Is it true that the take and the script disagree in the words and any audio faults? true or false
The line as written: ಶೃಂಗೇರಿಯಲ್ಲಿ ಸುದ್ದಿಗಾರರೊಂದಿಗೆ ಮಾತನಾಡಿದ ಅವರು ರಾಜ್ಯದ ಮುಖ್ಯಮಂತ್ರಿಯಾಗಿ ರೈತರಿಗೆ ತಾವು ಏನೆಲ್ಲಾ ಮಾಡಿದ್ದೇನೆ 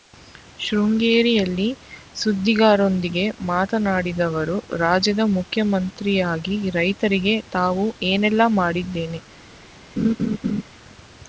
true